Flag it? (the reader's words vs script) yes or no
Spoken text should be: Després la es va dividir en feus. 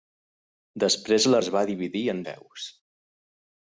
no